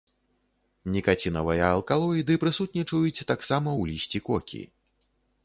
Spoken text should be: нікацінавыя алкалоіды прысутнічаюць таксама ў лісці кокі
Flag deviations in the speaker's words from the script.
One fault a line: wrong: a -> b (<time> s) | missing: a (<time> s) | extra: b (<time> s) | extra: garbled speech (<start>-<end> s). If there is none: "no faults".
no faults